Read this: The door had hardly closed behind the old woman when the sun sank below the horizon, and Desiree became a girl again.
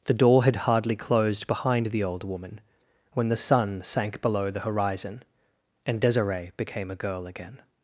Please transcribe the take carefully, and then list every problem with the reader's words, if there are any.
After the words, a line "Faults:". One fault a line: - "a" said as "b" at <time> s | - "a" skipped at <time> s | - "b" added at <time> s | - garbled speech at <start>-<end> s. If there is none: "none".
The door had hardly closed behind the old woman when the sun sank below the horizon, and Desiree became a girl again.
Faults:
none